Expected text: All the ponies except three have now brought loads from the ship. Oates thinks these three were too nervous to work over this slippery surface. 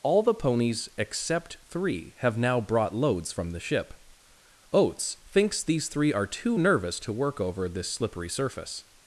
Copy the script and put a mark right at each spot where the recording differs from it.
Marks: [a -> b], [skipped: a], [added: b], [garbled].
All the ponies except three have now brought loads from the ship. Oates thinks these three [were -> are] too nervous to work over this slippery surface.